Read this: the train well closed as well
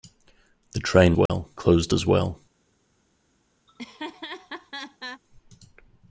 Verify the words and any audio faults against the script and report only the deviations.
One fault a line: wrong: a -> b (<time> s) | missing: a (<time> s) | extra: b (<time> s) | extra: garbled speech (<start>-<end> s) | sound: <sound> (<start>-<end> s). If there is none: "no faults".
sound: dropout (1.3-1.3 s)
sound: laugh (3.7-5.2 s)